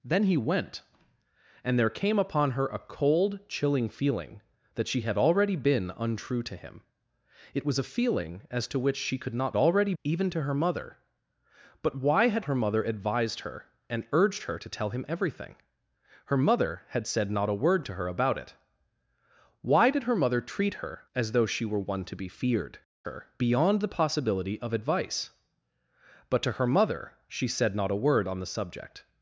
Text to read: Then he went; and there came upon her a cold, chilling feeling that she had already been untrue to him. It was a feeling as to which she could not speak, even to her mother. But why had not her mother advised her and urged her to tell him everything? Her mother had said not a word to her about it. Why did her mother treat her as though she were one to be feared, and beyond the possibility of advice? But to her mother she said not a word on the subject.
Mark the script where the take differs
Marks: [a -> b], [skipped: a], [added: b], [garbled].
Then he went; and there came upon her a cold, chilling feeling that she had already been untrue to him. It was a feeling as to which she could not [speak, -> already] even to her mother. But why had [skipped: not] her mother advised her and urged her to tell him everything? Her mother had said not a word to her about it. Why did her mother treat her as though she were one to be feared, [and -> her] beyond the possibility of advice? But to her mother she said not a word on the subject.